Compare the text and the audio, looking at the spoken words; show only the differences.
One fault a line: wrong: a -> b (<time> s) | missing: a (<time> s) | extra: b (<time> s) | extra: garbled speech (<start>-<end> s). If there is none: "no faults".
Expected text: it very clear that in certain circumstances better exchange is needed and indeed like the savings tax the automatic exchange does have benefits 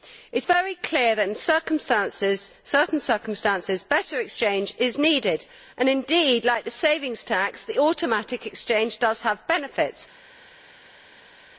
no faults